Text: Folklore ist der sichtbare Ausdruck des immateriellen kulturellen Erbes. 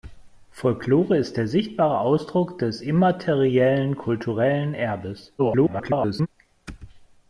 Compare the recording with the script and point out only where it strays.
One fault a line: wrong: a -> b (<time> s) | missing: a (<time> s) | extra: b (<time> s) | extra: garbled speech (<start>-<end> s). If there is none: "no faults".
extra: garbled speech (5.4-6.3 s)